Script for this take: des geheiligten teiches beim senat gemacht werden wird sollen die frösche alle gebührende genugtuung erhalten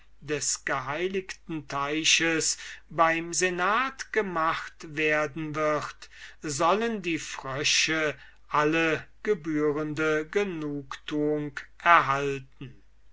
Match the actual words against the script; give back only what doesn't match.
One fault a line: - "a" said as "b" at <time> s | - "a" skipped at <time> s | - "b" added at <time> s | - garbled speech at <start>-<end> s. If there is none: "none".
none